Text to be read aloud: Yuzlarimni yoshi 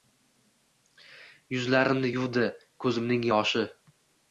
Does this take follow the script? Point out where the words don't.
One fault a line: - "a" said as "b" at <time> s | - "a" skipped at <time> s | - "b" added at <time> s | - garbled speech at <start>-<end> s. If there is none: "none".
- "yuvdi ko‘zimning" added at 2.2 s